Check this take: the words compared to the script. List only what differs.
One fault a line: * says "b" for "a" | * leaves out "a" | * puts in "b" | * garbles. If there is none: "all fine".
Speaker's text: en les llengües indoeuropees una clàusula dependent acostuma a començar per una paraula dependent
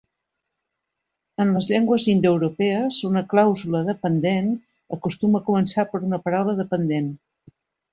all fine